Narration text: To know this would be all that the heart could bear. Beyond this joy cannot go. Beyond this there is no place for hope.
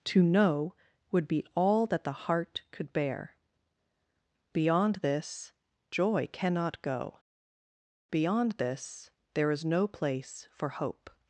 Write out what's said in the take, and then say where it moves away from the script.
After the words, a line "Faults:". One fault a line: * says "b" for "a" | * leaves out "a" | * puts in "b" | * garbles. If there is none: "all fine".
To know would be all that the heart could bear. Beyond this joy cannot go. Beyond this there is no place for hope.
Faults:
* leaves out "this"